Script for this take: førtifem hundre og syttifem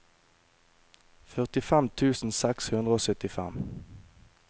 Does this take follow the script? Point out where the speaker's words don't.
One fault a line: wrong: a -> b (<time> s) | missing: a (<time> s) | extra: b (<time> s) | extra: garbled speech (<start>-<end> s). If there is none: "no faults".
extra: tusen seks (2.0 s)